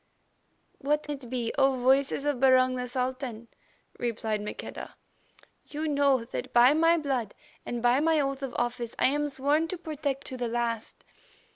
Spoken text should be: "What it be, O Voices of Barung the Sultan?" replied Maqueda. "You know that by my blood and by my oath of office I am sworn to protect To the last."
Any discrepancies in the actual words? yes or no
no